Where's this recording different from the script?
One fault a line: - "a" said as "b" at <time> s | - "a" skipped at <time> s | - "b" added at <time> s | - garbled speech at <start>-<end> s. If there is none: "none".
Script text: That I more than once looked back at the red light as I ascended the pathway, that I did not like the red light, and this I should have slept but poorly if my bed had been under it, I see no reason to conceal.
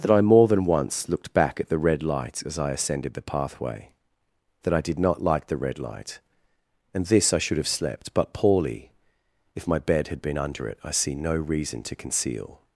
none